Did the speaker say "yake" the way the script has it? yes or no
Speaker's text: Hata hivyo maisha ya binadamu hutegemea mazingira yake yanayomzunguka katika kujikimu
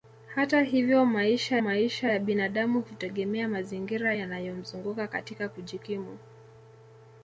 no